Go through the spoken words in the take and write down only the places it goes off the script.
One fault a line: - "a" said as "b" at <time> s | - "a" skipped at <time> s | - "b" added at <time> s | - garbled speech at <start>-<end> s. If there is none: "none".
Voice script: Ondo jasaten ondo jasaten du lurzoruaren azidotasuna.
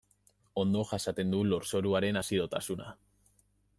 - "ondo jasaten" skipped at 1.4 s